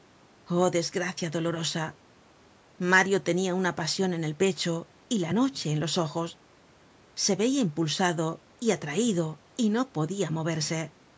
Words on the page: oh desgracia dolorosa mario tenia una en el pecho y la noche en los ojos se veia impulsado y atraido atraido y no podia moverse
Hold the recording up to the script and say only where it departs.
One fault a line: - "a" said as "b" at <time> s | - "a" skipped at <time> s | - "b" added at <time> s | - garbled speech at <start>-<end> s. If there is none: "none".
- "pasion" added at 3.8 s
- "atraido" skipped at 9.4 s